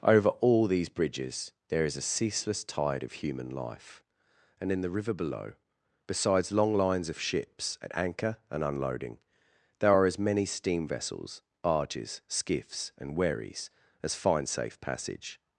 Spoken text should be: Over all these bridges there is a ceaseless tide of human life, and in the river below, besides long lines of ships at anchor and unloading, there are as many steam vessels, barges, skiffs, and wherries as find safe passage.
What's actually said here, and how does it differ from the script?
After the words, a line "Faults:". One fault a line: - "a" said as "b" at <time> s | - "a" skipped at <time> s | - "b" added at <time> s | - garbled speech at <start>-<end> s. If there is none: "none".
Over all these bridges there is a ceaseless tide of human life, and in the river below, besides long lines of ships at anchor and unloading, there are as many steam vessels, barges, skiffs, and wherries as find safe passage.
Faults:
none